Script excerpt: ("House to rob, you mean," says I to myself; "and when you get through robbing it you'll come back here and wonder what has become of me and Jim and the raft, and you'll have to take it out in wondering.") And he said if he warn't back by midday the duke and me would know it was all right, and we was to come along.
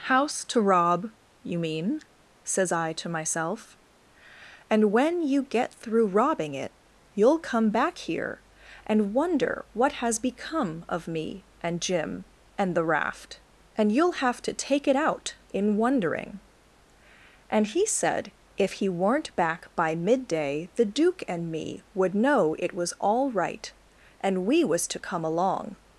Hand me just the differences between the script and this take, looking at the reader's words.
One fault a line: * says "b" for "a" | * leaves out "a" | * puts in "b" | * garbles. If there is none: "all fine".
* says "weren't" for "warn't"